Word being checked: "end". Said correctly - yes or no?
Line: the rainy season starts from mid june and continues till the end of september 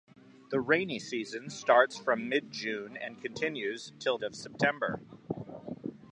no